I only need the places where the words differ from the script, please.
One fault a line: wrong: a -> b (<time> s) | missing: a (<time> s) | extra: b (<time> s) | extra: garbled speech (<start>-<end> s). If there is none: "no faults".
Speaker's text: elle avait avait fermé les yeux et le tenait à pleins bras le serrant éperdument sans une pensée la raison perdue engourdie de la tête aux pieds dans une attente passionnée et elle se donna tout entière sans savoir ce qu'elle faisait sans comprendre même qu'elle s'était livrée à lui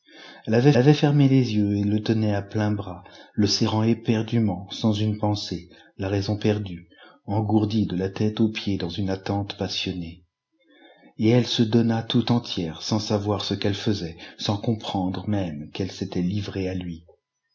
no faults